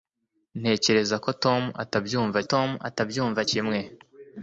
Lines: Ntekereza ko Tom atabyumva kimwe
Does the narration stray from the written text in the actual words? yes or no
yes